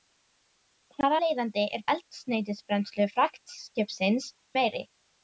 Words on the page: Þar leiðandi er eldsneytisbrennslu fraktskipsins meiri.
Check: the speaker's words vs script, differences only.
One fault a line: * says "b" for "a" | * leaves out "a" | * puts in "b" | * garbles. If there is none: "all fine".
all fine